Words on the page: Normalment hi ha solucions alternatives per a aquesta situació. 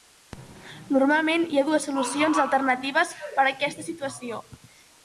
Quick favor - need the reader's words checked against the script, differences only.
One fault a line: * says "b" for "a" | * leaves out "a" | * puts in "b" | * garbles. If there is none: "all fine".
* puts in "dues"